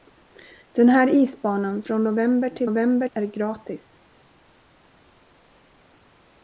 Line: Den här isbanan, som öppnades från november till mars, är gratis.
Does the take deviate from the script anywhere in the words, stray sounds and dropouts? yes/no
yes